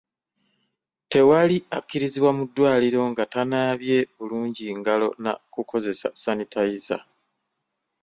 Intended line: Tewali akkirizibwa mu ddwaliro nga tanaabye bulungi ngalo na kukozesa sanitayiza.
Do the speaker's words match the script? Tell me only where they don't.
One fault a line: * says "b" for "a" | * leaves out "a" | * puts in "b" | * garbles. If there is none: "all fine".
all fine